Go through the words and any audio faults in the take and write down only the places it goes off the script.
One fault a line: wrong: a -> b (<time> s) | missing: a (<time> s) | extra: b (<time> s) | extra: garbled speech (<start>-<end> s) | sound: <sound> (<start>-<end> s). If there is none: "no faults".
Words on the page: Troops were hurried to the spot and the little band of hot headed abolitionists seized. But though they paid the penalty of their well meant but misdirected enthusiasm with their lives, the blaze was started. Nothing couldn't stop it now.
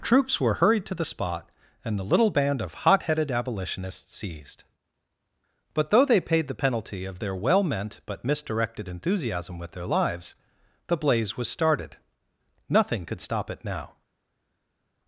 wrong: couldn't -> could (13.1 s)